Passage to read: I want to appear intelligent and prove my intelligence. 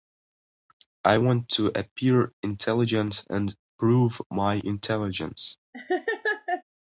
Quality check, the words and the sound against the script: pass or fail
fail